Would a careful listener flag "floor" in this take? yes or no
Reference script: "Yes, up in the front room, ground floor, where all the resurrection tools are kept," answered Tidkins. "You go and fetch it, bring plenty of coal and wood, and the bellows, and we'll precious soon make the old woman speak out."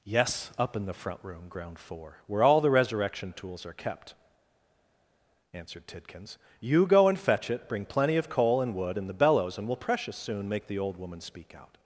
yes